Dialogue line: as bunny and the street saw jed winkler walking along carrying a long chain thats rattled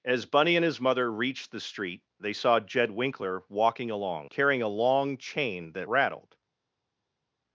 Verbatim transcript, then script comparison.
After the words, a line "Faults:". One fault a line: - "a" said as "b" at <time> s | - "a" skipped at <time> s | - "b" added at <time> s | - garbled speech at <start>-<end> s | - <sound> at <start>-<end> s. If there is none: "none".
as bunny and his mother reached the street they saw jed winkler walking along carrying a long chain that rattled
Faults:
- "his mother reached" added at 0.7 s
- "they" added at 2.2 s
- "thats" said as "that" at 5.7 s